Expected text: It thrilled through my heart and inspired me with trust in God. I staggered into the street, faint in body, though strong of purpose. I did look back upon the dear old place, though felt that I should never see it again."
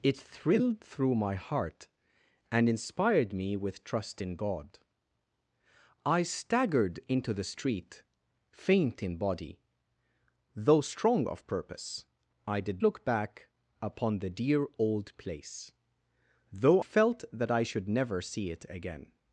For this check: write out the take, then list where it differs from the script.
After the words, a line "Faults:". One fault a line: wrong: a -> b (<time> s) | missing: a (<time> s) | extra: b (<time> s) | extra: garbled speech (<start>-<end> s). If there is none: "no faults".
It thrilled through my heart and inspired me with trust in God. I staggered into the street, faint in body, though strong of purpose. I did look back upon the dear old place, though felt that I should never see it again."
Faults:
no faults